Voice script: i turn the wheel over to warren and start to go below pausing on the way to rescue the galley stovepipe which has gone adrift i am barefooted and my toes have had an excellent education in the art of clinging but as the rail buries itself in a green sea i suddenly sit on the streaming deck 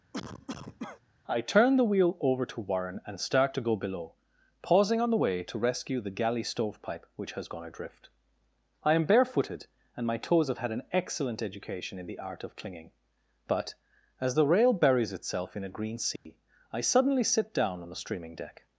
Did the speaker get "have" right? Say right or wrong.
right